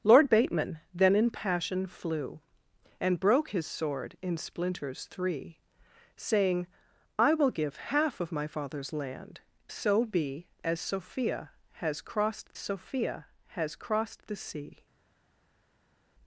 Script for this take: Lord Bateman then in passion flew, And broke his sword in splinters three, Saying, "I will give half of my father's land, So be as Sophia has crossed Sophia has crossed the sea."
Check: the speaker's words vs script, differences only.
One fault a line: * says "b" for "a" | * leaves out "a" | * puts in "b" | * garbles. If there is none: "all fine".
all fine